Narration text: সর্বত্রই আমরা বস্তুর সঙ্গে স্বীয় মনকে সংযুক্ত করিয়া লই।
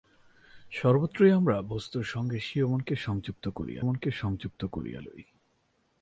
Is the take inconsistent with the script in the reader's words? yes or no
yes